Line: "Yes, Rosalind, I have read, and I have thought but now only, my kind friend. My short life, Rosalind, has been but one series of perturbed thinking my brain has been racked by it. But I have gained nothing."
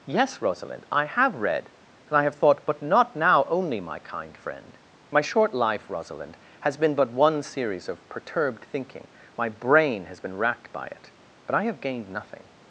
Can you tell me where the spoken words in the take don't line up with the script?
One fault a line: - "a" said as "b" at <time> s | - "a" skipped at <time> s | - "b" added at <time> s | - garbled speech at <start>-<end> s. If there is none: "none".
- "not" added at 2.8 s